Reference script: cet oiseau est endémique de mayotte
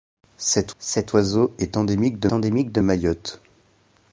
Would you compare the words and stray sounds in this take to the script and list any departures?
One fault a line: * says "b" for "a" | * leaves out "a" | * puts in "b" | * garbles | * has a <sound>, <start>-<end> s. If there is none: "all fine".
* puts in "cet"
* puts in "endémique de"